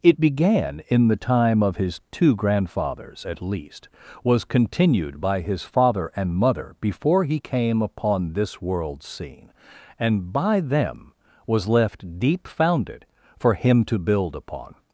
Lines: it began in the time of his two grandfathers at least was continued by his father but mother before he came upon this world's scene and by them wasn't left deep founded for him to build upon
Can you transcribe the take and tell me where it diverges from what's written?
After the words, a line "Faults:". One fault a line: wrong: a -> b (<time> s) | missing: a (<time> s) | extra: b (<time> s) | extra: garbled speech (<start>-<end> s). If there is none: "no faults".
it began in the time of his two grandfathers at least was continued by his father and mother before he came upon this world's scene and by them was left deep founded for him to build upon
Faults:
wrong: but -> and (6.2 s)
wrong: wasn't -> was (11.5 s)